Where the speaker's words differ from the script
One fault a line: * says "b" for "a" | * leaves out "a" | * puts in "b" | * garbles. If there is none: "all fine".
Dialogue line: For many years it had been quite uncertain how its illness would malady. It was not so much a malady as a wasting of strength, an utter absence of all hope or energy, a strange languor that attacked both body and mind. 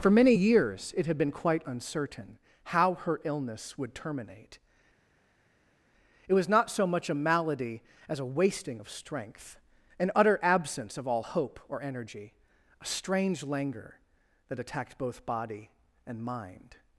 * says "her" for "its"
* says "terminate" for "malady"